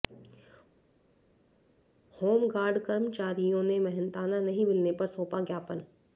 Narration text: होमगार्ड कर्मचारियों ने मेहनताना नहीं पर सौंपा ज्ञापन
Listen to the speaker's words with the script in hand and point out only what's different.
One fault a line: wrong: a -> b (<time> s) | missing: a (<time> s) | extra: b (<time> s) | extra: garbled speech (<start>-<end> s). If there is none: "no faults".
extra: मिलने (4.7 s)